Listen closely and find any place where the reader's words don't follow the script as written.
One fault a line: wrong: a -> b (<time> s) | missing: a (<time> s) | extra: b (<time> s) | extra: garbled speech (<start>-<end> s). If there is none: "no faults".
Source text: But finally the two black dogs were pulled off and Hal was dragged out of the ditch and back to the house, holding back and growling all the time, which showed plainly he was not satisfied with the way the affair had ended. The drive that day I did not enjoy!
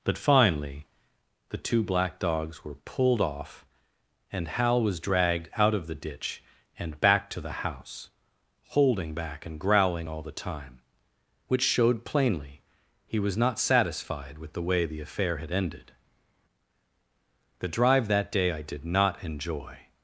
no faults